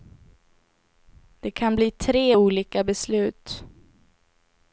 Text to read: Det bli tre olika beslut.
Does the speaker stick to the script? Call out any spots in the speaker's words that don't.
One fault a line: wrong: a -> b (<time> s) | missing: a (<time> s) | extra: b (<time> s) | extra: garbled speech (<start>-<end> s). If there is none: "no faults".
extra: kan (1.5 s)